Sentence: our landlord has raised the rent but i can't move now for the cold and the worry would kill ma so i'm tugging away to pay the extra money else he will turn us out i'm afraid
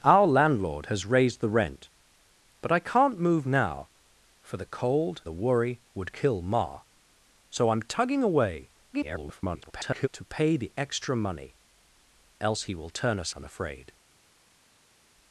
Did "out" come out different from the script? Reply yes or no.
yes